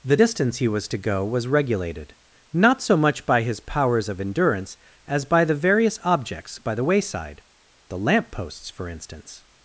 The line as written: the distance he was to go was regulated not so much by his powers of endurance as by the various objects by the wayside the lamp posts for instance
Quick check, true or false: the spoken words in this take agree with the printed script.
true